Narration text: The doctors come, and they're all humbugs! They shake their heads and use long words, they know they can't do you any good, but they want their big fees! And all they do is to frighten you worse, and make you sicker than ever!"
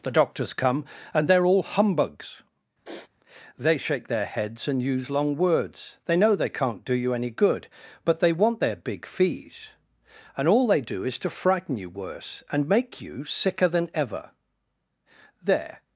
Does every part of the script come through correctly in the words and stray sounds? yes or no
no